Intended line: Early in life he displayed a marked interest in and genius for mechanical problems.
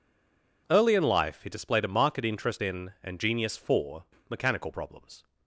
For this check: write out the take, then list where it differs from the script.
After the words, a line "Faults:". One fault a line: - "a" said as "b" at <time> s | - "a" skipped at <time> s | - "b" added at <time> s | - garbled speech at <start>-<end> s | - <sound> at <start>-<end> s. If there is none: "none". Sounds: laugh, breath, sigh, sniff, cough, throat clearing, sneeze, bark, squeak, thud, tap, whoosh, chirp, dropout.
Early in life he displayed a marked interest in and genius for mechanical problems.
Faults:
none